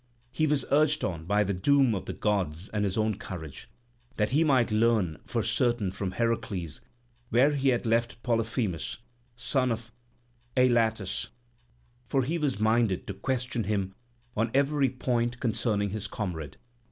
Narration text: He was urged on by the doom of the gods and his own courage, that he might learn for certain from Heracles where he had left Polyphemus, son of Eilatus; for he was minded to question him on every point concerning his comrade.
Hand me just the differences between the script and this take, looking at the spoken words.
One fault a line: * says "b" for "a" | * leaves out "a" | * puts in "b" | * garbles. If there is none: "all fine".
all fine